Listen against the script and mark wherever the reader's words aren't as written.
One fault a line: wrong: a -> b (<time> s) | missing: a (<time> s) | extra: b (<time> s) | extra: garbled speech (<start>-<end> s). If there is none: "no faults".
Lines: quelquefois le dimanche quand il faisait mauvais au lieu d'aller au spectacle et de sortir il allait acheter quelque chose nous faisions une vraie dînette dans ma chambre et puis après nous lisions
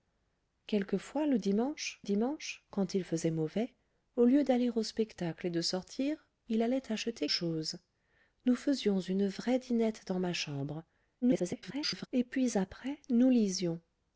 extra: dimanche (2.0 s)
missing: quelque (7.3 s)
extra: garbled speech (11.2-12.1 s)